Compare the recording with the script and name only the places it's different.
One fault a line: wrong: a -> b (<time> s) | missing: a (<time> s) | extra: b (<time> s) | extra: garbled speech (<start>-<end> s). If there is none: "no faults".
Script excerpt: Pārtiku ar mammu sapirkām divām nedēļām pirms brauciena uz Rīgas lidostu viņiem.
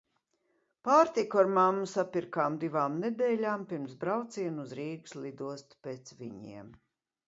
extra: pēc (5.9 s)